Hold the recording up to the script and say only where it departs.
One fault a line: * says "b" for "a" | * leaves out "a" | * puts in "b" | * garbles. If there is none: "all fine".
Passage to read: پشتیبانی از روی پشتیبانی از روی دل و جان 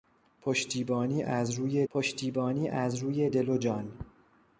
all fine